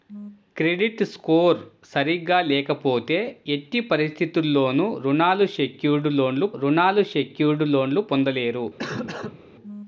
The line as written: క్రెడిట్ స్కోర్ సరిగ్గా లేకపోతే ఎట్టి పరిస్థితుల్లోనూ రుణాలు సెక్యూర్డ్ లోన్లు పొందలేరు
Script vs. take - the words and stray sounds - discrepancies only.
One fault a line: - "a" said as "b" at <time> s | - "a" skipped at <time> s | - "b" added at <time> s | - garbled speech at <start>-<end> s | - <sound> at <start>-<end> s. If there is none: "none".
- "రుణాలు సెక్యూర్డ్ లోన్లు" added at 6.5 s
- cough at 8.8-9.4 s